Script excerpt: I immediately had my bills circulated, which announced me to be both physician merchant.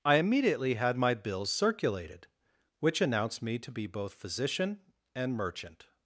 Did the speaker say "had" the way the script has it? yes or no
yes